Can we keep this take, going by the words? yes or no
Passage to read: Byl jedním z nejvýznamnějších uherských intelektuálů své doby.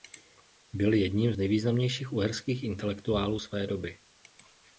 yes